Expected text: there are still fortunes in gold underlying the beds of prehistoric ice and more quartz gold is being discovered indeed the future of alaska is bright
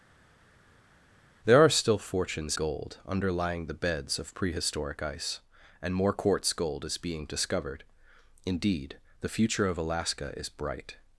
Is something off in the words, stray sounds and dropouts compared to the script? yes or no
yes